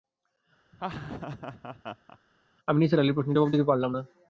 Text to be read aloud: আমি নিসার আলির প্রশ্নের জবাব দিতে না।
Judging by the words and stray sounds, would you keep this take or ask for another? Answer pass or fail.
fail